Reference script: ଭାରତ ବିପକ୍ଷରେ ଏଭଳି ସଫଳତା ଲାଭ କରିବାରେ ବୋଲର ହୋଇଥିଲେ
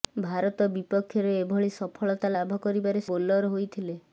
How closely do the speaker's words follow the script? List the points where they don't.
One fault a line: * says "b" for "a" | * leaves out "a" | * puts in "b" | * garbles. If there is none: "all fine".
all fine